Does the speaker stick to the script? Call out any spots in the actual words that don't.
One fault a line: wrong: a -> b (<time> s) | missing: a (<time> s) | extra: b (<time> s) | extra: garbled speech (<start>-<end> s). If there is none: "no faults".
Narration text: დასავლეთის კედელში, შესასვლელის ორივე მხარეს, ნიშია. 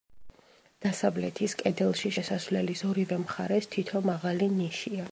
extra: თითო მაღალი (3.8 s)